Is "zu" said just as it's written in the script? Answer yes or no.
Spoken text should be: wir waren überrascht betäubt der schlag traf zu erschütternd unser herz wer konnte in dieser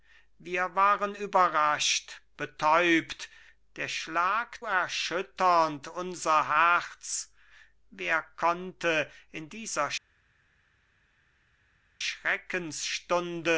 no